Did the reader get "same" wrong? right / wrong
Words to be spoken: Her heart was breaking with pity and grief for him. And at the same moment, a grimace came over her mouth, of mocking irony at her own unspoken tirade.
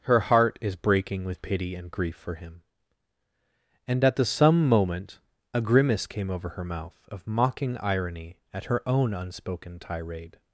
wrong